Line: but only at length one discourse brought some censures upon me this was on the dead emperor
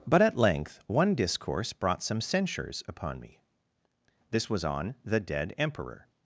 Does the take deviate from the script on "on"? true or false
false